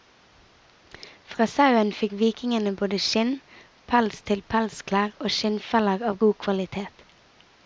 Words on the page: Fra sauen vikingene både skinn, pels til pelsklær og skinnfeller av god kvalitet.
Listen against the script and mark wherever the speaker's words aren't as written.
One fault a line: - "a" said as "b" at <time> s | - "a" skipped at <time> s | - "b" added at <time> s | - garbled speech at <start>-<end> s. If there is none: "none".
- "fikk" added at 2.0 s